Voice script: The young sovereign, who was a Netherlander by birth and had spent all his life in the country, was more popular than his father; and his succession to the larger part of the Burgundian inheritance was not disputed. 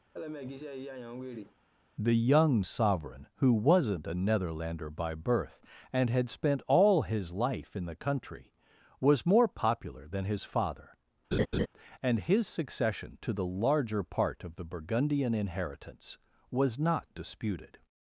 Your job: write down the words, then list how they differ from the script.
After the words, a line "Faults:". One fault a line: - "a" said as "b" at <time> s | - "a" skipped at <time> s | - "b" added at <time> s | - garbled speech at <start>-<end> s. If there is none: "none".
The young sovereign, who wasn't a Netherlander by birth and had spent all his life in the country, was more popular than his father; and his succession to the larger part of the Burgundian inheritance was not disputed.
Faults:
- "was" said as "wasn't" at 3.5 s